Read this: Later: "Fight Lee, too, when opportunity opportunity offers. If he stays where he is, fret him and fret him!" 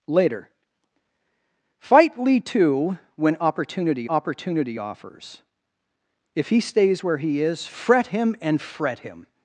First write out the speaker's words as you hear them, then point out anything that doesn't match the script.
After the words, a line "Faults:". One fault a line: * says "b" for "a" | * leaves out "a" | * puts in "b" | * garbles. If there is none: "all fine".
Later: "Fight Lee, too, when opportunity opportunity offers. If he stays where he is, fret him and fret him!"
Faults:
all fine